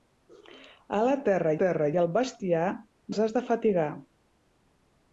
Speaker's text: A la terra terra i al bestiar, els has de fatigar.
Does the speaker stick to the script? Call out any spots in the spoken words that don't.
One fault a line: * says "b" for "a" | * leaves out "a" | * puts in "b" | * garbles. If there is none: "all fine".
all fine